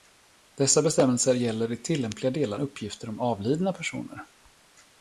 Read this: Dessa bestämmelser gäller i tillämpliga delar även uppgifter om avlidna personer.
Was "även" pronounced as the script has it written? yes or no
no